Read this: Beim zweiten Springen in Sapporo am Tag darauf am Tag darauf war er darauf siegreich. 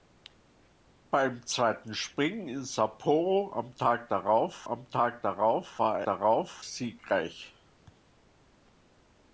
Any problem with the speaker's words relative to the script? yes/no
no